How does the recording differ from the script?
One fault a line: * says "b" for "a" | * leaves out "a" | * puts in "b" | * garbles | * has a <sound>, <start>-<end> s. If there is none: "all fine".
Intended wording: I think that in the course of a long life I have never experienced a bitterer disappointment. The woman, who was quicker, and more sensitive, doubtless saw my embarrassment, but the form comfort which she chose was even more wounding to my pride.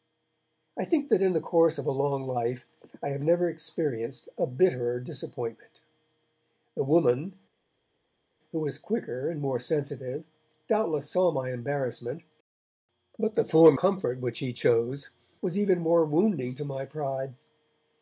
all fine